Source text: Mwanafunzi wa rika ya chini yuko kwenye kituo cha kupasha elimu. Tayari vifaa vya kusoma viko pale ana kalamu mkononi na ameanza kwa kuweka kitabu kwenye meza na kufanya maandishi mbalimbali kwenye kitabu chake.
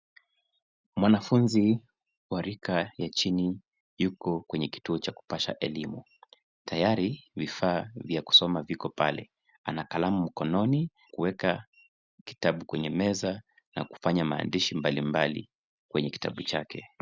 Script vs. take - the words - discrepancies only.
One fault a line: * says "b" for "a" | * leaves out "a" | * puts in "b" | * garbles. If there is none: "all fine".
* leaves out "na ameanza kwa"